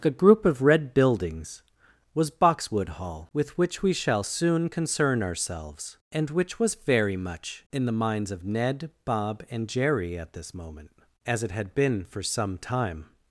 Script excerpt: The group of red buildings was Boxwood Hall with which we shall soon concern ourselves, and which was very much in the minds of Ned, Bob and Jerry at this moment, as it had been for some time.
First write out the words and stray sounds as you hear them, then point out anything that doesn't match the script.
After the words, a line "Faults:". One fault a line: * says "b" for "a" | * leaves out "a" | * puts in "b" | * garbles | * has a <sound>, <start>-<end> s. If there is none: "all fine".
A group of red buildings was Boxwood Hall with which we shall soon concern ourselves, and which was very much in the minds of Ned, Bob and Jerry at this moment, as it had been for some time.
Faults:
* says "A" for "The"